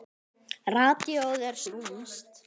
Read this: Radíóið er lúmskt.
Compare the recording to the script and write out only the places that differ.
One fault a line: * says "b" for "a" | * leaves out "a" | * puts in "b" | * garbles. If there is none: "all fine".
all fine